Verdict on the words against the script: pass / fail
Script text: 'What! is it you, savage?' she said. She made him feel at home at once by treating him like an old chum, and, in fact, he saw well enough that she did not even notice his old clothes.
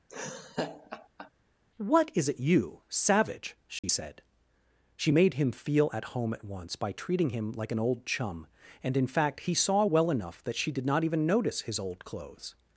pass